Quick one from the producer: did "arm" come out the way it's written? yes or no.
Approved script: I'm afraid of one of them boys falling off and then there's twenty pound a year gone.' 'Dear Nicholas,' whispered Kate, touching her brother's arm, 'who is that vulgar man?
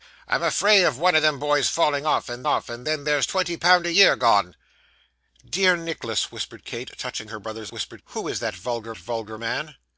no